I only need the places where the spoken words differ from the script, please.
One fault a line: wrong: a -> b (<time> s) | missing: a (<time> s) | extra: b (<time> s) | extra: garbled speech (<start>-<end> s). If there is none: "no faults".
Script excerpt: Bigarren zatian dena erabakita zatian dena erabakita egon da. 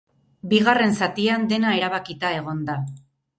missing: zatian dena erabakita (2.3 s)